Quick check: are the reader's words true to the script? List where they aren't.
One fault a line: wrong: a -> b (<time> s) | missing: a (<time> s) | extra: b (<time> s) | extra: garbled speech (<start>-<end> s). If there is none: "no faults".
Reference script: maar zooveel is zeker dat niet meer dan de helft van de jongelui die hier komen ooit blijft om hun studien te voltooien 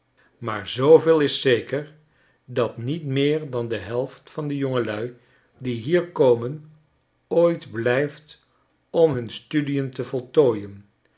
no faults